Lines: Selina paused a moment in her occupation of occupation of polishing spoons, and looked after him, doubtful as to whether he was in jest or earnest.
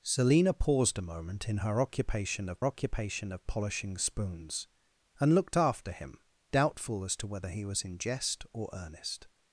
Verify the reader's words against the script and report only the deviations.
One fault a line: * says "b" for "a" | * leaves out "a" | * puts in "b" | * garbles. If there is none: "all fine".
all fine